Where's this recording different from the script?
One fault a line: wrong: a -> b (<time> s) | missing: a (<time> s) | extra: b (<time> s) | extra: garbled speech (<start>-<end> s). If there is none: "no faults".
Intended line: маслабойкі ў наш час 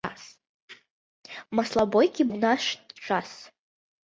no faults